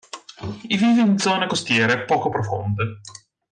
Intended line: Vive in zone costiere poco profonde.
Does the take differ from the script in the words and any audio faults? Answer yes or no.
no